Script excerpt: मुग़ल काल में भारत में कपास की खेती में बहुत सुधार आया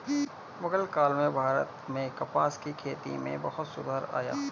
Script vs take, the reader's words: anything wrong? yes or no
no